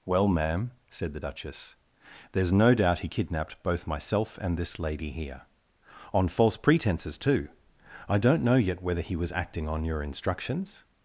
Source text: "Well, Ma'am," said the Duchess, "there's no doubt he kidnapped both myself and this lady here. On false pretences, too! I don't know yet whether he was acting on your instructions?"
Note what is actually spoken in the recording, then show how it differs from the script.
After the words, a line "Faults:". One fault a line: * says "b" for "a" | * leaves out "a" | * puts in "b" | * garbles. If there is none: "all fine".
"Well, Ma'am," said the Duchess, "there's no doubt he kidnapped both myself and this lady here. On false pretences, too! I don't know yet whether he was acting on your instructions?"
Faults:
all fine